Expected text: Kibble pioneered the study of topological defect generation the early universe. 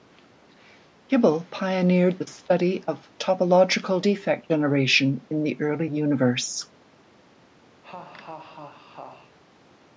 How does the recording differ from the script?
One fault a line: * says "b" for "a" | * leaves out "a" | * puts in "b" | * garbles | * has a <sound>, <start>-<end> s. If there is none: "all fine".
* puts in "in"
* has a laugh, 7.8-9.4 s